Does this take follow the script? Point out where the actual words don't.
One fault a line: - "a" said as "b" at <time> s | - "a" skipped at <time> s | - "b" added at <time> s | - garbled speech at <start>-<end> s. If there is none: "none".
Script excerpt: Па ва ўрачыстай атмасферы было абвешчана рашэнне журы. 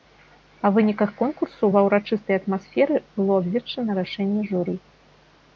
- "выніках конкурсу" added at 0.8 s